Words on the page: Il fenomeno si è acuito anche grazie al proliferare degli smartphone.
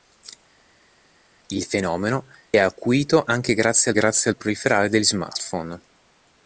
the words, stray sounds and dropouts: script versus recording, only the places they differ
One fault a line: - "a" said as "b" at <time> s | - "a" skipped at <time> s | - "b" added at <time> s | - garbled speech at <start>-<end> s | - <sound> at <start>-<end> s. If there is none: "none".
- "si" skipped at 2.2 s
- "grazie" added at 3.9 s